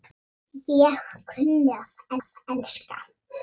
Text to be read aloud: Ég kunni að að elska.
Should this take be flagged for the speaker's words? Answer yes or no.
no